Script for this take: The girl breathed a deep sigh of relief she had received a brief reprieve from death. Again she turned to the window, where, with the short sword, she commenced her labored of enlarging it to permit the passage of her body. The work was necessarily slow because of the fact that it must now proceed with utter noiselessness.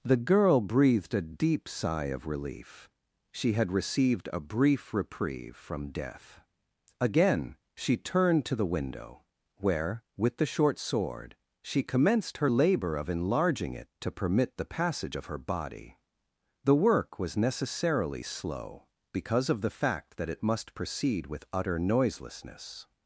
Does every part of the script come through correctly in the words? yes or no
no